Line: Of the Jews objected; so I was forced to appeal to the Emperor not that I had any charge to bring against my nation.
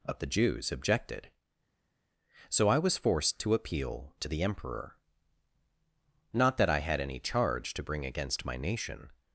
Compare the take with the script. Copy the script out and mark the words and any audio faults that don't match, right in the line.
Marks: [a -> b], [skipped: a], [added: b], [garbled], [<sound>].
Of the Jews objected; so I was forced to appeal to the Emperor not that I had any charge to bring against my nation.